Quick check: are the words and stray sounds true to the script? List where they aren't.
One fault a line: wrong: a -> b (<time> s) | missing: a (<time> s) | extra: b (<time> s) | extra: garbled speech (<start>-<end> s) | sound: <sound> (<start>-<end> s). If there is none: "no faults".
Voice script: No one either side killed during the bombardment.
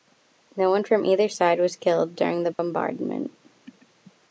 extra: from (0.8 s)
extra: was (1.6 s)
sound: dropout (2.5-2.6 s)